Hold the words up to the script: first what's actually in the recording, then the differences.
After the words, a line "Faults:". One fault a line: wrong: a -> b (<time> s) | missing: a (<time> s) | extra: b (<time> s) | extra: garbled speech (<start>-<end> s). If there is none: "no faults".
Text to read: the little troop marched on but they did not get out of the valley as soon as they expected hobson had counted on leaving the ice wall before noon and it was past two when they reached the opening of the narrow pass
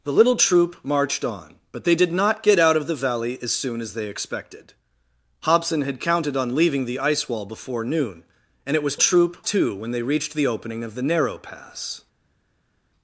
the little troop marched on but they did not get out of the valley as soon as they expected hobson had counted on leaving the ice wall before noon and it was troop two when they reached the opening of the narrow pass
Faults:
wrong: past -> troop (9.0 s)